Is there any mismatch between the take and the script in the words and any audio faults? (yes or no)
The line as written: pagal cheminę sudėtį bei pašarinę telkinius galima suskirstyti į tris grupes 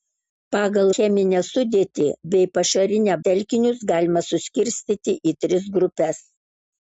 no